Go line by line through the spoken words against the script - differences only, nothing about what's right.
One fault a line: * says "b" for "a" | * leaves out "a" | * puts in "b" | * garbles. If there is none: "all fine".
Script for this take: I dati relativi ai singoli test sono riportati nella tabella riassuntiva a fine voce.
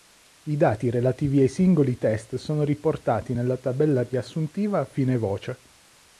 all fine